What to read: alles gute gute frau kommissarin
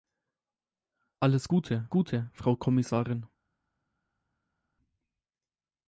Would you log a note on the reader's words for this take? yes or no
no